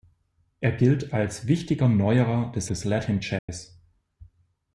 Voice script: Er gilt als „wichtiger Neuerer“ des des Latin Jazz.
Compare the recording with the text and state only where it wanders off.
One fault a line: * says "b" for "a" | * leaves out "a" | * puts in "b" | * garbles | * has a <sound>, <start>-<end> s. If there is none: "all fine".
* has a dropout, 3.4-3.5 s